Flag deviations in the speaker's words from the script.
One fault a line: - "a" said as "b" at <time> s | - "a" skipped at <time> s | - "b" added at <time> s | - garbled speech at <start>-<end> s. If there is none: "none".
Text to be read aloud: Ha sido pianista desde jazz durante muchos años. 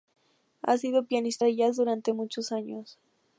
- "desde" said as "de" at 1.4 s